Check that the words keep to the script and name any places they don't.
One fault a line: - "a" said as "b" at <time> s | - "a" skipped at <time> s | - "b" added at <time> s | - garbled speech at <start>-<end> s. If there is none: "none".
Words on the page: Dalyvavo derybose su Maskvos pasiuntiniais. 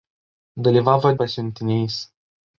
- "derybose su Maskvos" skipped at 1.1 s